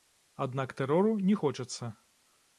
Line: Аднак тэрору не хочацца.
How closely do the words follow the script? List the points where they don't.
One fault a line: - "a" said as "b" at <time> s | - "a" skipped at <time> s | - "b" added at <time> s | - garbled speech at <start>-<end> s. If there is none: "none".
none